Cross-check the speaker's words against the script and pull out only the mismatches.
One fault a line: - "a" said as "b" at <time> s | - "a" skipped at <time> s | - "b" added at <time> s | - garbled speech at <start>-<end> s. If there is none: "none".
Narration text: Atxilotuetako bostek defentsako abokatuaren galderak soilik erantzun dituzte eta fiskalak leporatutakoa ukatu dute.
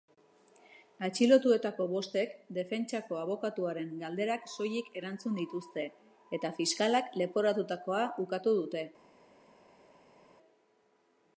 none